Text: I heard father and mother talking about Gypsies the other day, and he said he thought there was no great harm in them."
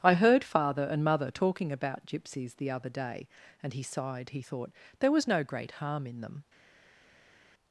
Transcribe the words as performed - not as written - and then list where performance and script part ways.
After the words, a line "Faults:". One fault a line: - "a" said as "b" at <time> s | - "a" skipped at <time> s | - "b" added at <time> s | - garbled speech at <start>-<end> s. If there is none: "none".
I heard father and mother talking about Gypsies the other day, and he sighed he thought there was no great harm in them."
Faults:
- "said" said as "sighed" at 3.8 s